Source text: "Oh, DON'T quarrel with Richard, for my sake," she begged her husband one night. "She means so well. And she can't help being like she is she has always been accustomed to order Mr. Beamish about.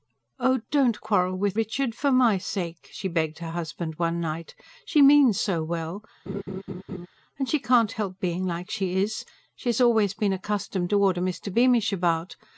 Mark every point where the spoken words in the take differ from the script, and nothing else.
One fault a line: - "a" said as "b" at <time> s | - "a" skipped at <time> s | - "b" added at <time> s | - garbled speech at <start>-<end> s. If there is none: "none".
none